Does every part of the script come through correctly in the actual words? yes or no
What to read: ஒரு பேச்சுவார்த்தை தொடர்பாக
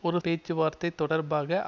yes